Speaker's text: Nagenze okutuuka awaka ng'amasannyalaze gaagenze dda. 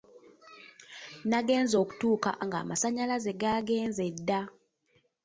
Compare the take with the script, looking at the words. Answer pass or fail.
fail